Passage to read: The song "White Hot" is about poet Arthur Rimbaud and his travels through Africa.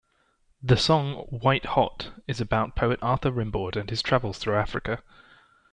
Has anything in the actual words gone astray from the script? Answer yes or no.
no